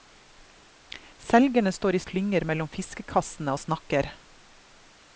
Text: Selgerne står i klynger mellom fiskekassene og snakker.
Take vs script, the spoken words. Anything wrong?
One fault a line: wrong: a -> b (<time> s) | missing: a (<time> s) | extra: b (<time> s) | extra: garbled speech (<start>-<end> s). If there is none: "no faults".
no faults